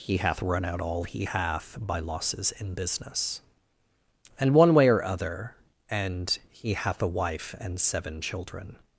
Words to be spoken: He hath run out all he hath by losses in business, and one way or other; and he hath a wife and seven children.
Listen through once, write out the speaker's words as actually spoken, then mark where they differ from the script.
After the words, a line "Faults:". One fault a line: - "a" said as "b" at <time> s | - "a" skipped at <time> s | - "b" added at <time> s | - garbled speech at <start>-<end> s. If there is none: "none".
He hath run out all he hath by losses in business, and one way or other; and he hath a wife and seven children.
Faults:
none